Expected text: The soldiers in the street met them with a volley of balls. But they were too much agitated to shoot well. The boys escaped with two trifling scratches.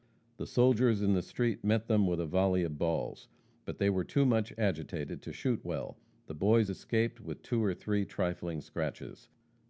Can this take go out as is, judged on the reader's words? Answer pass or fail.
fail